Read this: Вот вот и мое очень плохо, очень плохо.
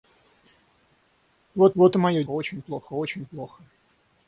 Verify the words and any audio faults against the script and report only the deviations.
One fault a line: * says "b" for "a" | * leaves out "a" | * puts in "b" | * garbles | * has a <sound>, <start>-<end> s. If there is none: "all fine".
all fine